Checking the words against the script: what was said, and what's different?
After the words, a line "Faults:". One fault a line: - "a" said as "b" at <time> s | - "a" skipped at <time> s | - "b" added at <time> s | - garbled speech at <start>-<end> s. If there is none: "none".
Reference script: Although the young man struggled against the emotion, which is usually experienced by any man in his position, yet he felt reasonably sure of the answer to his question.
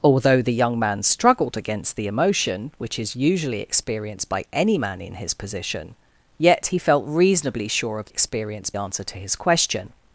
Although the young man struggled against the emotion, which is usually experienced by any man in his position, yet he felt reasonably sure of experienced answer to his question.
Faults:
- "the" said as "experienced" at 8.1 s